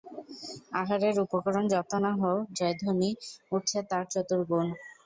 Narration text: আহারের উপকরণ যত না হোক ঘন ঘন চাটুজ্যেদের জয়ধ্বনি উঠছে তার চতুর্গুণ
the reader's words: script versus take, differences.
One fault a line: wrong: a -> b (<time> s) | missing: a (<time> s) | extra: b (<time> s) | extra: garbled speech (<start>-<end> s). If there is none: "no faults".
missing: ঘন ঘন চাটুজ্যেদের (2.4 s)